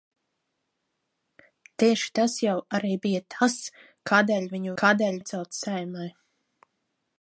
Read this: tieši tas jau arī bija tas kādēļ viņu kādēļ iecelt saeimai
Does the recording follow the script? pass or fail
pass